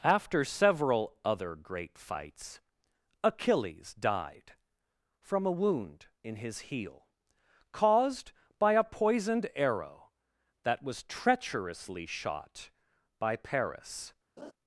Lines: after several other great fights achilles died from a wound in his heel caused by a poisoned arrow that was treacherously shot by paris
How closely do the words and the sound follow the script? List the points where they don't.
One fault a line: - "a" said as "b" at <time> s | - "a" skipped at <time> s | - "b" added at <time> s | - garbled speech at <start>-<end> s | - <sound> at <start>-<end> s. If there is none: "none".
- laugh at 14.4-14.5 s